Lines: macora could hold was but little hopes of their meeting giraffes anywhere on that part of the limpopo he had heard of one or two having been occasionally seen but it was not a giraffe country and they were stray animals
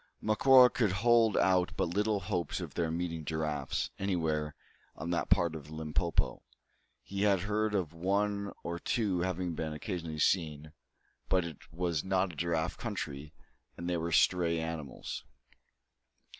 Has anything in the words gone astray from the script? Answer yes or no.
yes